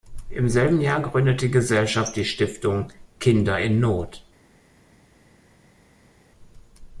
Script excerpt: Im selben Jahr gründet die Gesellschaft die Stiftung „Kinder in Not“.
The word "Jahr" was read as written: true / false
true